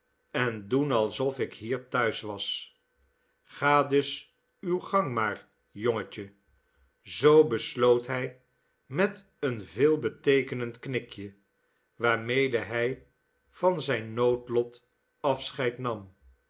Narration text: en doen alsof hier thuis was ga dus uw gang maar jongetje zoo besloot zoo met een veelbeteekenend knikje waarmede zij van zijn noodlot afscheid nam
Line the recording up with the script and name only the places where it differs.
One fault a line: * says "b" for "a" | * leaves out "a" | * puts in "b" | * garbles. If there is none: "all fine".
* puts in "ik"
* says "hij" for "zoo"
* says "hij" for "zij"